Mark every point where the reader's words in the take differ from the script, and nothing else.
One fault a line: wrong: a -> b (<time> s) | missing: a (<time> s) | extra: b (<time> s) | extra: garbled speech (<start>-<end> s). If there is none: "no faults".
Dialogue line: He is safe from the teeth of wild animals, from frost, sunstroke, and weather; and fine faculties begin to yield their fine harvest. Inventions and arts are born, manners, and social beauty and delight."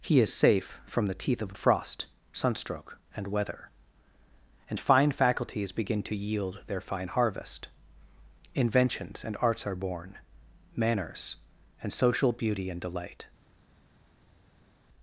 missing: wild animals from (1.6 s)